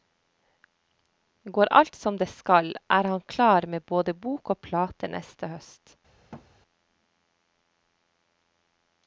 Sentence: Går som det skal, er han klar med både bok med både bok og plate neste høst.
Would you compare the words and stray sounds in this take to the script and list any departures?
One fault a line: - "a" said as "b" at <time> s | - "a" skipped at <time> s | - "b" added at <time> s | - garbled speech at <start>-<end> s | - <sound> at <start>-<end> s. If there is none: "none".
- "alt" added at 1.7 s
- "med både bok" skipped at 4.5 s
- thud at 6.3-6.5 s